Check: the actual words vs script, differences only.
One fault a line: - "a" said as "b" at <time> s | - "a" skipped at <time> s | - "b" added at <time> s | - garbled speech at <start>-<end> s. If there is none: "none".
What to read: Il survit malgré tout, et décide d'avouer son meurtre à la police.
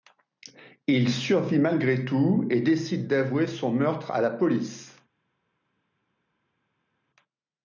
none